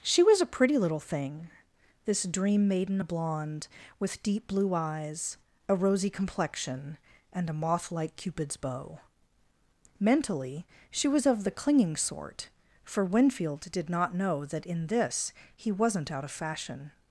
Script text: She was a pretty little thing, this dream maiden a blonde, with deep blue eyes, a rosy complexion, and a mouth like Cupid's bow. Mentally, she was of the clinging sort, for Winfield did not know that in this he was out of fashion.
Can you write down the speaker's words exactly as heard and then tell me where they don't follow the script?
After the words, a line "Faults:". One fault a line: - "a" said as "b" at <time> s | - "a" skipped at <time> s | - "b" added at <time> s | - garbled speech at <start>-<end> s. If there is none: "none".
She was a pretty little thing, this dream maiden a blonde, with deep blue eyes, a rosy complexion, and a moth like Cupid's bow. Mentally, she was of the clinging sort, for Winfield did not know that in this he wasn't out of fashion.
Faults:
- "mouth" said as "moth" at 7.5 s
- "was" said as "wasn't" at 15.7 s